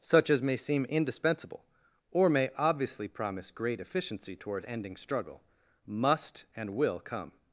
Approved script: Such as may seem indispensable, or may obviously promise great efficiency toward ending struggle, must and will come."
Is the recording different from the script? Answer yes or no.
no